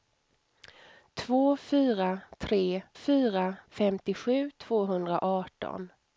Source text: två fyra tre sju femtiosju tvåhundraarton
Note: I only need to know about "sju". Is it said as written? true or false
false